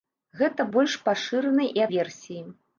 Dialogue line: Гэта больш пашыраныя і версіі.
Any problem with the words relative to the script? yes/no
no